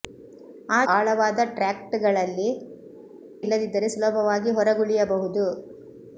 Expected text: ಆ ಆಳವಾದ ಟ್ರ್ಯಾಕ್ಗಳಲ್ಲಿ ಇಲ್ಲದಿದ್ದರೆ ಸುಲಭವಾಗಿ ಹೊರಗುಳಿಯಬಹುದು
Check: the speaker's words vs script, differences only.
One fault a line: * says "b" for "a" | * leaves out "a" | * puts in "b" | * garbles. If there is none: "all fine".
all fine